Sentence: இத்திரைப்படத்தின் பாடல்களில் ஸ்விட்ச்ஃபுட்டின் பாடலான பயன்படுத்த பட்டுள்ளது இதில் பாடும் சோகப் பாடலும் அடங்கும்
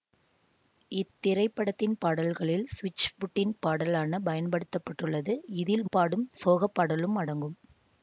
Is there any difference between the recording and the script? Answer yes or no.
no